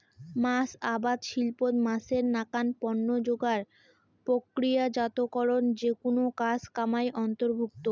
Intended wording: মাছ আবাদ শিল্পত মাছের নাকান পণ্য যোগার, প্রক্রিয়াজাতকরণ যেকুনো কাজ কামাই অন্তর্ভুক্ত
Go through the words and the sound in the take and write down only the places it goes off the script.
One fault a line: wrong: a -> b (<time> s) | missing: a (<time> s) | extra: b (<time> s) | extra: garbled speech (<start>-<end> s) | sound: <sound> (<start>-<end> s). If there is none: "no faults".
no faults